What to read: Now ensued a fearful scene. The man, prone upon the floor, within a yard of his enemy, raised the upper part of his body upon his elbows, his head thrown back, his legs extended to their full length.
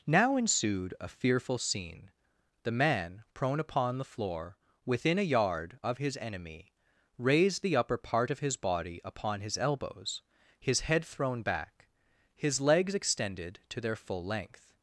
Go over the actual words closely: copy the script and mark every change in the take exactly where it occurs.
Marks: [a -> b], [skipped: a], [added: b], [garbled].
Now ensued a fearful scene. The man, prone upon the floor, within a yard of his enemy, raised the upper part of his body upon his elbows, his head thrown back, his legs extended to their full length.